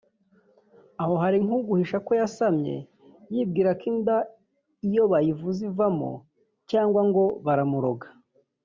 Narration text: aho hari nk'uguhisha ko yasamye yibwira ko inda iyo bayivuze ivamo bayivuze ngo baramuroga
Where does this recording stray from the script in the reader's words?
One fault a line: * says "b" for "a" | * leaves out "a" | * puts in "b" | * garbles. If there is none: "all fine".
* says "cyangwa" for "bayivuze"